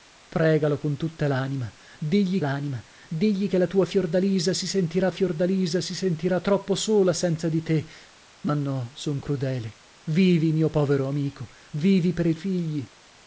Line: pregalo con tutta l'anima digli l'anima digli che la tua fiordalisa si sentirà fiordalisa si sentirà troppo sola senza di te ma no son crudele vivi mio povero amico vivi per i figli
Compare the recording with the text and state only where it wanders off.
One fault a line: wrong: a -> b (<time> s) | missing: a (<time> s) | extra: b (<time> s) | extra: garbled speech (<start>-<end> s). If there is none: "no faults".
no faults